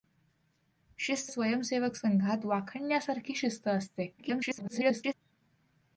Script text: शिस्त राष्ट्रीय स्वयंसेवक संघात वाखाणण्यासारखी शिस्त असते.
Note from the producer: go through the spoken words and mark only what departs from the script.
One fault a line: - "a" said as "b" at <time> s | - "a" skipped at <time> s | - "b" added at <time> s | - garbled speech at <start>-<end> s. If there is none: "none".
- "राष्ट्रीय" skipped at 1.3 s
- garbled speech at 4.2-5.1 s